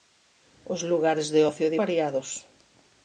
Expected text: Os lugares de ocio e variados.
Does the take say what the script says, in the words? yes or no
yes